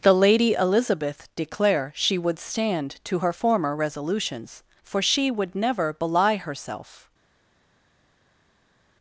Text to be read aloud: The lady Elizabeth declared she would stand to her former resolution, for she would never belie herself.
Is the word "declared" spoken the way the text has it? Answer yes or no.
no